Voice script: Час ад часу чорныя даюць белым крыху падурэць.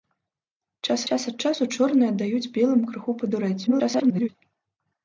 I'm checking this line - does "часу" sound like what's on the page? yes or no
yes